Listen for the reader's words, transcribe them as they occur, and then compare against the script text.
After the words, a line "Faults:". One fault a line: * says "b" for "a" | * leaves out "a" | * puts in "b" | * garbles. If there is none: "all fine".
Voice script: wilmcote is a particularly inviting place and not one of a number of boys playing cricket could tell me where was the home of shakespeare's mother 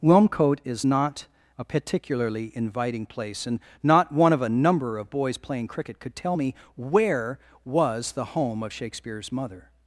wilmcote is not a particularly inviting place and not one of a number of boys playing cricket could tell me where was the home of shakespeare's mother
Faults:
* puts in "not"